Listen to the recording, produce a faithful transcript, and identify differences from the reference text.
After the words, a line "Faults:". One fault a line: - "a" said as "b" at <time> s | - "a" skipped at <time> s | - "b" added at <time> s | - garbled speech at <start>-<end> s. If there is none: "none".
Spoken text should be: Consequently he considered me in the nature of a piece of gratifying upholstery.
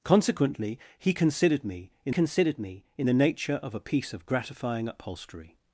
Consequently he considered me in considered me in the nature of a piece of gratifying upholstery.
Faults:
- "considered me in" added at 2.1 s